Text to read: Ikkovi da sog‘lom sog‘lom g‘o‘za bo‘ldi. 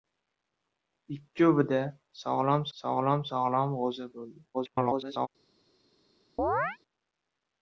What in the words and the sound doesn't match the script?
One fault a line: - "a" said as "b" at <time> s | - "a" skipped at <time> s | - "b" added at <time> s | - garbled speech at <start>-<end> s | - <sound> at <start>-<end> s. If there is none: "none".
- "sog‘lom" added at 3.3 s
- garbled speech at 4.5-5.3 s
- chirp at 6.4-6.8 s